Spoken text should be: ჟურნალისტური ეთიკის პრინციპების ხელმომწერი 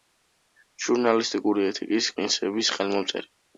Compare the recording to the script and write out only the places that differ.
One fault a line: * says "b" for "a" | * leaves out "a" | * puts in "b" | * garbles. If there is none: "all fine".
all fine